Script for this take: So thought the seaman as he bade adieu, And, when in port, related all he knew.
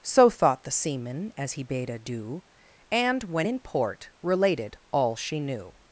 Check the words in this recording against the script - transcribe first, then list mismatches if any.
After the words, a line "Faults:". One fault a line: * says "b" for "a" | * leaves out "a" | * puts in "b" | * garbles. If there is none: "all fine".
So thought the seaman as he bade adieu, And, when in port, related all she knew.
Faults:
* says "she" for "he"